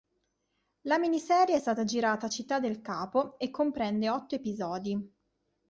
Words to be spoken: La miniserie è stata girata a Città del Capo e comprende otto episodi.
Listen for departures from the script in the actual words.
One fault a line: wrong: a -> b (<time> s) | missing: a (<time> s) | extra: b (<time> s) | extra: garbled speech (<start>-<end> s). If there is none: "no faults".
no faults